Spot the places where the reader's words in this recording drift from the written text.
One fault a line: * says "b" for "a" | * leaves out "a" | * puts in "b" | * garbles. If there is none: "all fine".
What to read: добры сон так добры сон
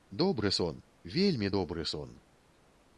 * says "вельмі" for "так"